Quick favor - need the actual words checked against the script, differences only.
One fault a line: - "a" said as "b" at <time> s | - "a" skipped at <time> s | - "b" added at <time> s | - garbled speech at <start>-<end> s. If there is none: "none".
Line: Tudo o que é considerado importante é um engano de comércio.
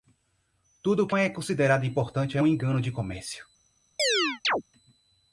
none